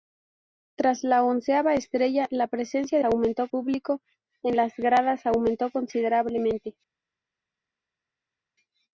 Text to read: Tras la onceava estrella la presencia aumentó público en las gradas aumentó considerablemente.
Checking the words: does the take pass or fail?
pass